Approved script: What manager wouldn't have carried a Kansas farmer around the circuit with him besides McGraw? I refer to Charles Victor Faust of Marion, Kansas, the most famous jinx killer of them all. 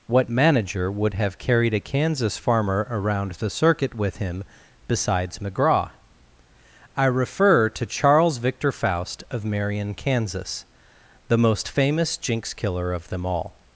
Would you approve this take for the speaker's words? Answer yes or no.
no